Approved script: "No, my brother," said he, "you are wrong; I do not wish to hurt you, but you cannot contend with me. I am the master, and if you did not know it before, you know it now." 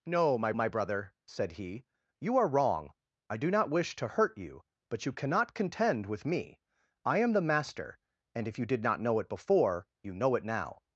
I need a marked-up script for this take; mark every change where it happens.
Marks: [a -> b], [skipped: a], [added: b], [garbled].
"No, my [added: my] brother," said he, "you are wrong; I do not wish to hurt you, but you cannot contend with me. I am the master, and if you did not know it before, you know it now."